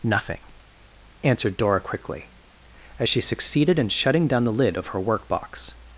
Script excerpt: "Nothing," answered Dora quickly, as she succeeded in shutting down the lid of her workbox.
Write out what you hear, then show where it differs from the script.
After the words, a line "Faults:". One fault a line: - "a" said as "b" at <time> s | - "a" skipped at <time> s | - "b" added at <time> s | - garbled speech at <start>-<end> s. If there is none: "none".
"Nothing," answered Dora quickly, as she succeeded in shutting down the lid of her workbox.
Faults:
none